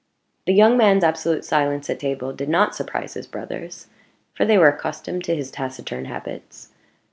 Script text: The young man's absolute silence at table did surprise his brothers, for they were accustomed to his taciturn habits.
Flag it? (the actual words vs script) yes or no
yes